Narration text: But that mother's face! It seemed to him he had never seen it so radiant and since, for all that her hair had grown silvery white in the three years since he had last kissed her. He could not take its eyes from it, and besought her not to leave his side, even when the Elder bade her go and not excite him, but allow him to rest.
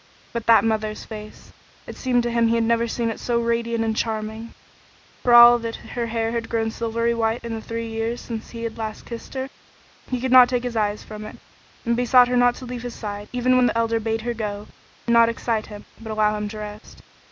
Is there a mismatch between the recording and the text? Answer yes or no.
yes